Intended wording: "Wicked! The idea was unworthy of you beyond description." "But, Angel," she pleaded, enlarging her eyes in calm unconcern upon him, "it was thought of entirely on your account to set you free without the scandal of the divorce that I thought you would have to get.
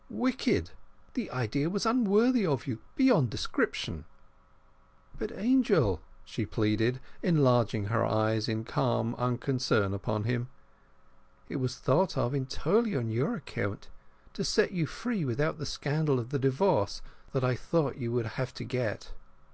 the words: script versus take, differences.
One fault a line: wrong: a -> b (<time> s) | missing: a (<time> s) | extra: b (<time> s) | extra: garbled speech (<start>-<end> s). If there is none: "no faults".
no faults